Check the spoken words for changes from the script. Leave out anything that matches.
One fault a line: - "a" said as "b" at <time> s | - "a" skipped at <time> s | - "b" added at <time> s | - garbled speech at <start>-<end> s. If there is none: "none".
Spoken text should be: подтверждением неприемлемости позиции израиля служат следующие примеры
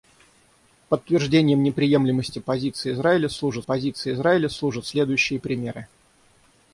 - "позиции израиля служат" added at 3.6 s